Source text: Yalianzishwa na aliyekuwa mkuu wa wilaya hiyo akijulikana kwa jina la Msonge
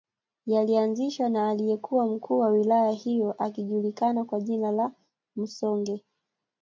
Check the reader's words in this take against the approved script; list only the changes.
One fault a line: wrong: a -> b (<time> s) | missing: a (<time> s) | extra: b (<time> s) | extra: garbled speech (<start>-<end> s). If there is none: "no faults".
no faults